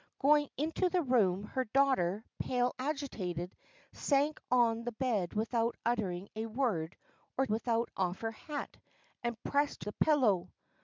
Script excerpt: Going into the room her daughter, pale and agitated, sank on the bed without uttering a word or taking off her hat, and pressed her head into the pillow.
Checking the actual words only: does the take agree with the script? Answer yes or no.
no